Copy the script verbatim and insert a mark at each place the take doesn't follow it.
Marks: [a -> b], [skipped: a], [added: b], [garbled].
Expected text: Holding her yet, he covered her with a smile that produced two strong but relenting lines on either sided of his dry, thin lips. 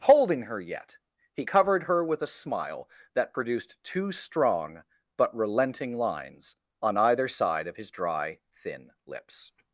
Holding her yet, he covered her with a smile that produced two strong but relenting lines on either [sided -> side] of his dry, thin lips.